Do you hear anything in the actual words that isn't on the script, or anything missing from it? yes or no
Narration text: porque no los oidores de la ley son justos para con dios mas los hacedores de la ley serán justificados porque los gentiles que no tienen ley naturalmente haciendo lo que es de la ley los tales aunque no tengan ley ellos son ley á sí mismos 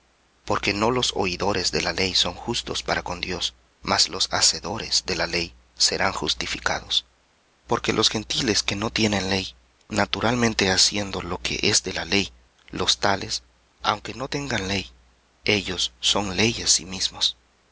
no